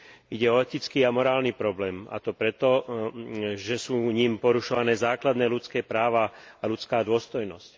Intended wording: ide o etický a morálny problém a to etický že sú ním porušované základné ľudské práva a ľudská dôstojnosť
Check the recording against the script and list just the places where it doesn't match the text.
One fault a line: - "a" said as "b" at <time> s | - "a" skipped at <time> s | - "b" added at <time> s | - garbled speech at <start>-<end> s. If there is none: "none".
- "etický" said as "preto" at 2.3 s